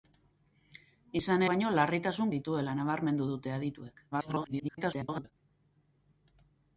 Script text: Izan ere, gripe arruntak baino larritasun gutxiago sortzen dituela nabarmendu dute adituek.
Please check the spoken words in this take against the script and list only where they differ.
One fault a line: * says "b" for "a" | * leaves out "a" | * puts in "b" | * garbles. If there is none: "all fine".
* leaves out "ere gripe arruntak"
* leaves out "gutxiago sortzen"
* garbles